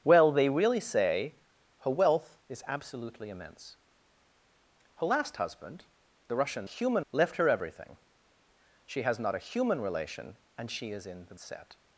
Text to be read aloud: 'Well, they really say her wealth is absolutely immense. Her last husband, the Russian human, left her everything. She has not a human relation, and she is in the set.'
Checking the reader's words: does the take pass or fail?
pass